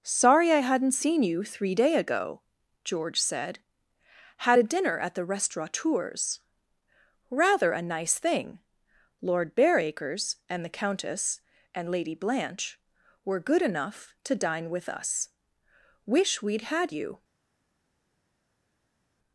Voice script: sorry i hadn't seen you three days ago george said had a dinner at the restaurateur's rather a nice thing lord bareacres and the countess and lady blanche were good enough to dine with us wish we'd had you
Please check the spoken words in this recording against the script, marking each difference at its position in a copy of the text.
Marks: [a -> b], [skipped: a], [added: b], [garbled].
sorry i hadn't seen you three [days -> day] ago george said had a dinner at the restaurateur's rather a nice thing lord bareacres and the countess and lady blanche were good enough to dine with us wish we'd had you